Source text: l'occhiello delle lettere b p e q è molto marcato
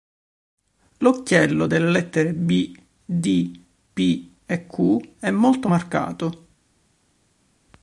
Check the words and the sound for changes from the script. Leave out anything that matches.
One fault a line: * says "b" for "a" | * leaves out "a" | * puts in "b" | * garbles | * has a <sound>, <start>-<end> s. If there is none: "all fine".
* puts in "d"